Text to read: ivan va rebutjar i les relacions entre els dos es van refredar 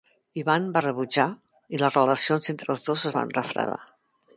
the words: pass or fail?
pass